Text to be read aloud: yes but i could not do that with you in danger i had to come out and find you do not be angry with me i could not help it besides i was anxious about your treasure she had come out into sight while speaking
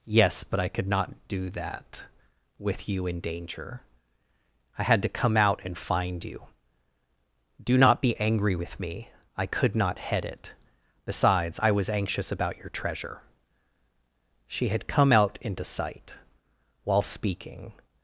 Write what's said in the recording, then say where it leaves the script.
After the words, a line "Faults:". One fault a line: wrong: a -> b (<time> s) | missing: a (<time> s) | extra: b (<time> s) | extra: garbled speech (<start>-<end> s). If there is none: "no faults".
yes but i could not do that with you in danger i had to come out and find you do not be angry with me i could not head it besides i was anxious about your treasure she had come out into sight while speaking
Faults:
wrong: help -> head (10.0 s)